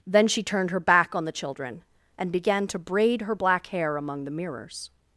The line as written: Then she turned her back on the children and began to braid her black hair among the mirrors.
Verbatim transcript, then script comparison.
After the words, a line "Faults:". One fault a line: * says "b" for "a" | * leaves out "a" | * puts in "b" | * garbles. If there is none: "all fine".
Then she turned her back on the children and began to braid her black hair among the mirrors.
Faults:
all fine